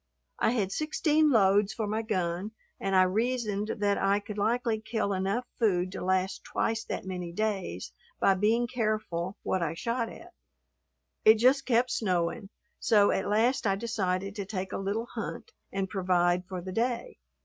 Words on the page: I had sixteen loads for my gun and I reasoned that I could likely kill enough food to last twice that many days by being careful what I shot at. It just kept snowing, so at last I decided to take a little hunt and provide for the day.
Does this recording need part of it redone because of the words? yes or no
no